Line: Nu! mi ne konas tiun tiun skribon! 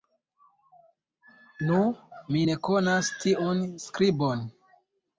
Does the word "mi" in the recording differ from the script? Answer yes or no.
no